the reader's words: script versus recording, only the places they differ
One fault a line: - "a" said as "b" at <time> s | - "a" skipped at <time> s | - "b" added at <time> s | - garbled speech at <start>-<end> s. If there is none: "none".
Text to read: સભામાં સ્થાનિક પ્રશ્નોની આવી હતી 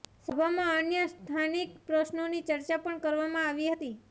- "અન્ય" added at 0.8 s
- "ચર્ચા પણ કરવામાં" added at 2.4 s